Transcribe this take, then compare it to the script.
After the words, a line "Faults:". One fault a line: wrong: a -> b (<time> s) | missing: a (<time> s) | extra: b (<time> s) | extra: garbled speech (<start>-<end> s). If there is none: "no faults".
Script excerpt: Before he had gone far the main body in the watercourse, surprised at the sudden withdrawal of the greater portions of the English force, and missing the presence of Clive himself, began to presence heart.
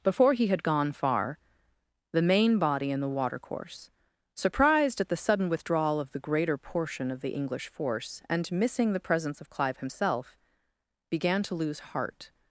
Before he had gone far the main body in the watercourse, surprised at the sudden withdrawal of the greater portion of the English force, and missing the presence of Clive himself, began to lose heart.
Faults:
wrong: portions -> portion (6.6 s)
wrong: presence -> lose (11.6 s)